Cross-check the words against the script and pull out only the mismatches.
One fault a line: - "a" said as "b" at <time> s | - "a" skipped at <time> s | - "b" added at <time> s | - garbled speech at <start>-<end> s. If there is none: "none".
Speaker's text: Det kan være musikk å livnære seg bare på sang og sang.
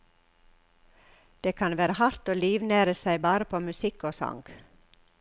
- "musikk" said as "hardt" at 2.0 s
- "sang" said as "musikk" at 3.6 s